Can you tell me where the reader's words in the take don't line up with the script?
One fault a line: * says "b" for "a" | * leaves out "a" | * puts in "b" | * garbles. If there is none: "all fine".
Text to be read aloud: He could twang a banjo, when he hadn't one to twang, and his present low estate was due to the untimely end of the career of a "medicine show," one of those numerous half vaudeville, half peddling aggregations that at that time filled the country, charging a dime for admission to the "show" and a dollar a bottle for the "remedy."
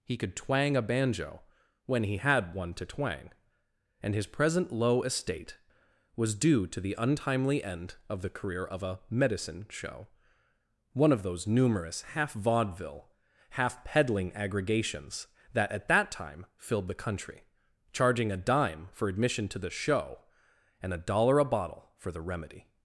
* says "had" for "hadn't"